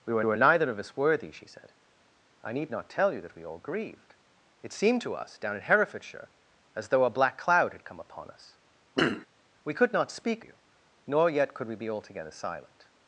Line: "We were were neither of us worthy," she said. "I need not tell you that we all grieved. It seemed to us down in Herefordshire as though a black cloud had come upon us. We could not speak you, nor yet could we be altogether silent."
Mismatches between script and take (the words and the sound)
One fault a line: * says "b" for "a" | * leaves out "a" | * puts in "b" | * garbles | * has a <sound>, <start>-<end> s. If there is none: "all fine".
* has a throat clearing, 8.9-9.3 s